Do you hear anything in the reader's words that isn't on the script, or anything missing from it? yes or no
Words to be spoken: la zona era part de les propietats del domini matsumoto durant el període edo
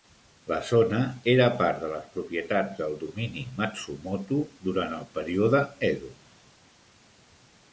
no